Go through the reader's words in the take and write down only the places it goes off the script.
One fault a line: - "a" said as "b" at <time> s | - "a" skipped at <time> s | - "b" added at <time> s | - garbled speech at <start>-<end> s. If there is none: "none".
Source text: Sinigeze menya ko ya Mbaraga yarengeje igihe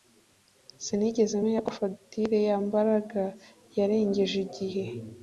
- "fagitire" added at 1.8 s